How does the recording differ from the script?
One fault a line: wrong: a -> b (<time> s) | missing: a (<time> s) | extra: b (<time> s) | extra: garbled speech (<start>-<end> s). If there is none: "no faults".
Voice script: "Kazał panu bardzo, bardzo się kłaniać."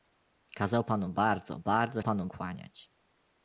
wrong: się -> panu (2.0 s)